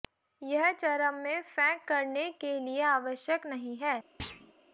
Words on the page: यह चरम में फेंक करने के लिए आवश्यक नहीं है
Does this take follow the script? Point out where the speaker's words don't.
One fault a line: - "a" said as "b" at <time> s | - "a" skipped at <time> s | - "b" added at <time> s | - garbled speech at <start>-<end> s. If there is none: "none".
none